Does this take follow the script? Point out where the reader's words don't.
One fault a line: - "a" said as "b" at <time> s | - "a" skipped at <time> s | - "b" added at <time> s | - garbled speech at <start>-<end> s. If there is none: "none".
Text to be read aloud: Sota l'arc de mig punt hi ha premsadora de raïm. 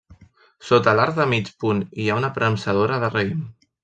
- "una" added at 2.2 s